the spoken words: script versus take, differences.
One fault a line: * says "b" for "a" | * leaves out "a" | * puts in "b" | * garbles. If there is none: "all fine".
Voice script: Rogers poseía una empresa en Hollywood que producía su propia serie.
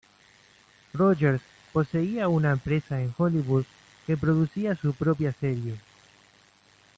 all fine